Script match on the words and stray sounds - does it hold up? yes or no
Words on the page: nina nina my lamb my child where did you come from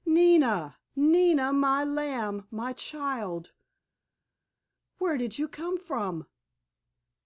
yes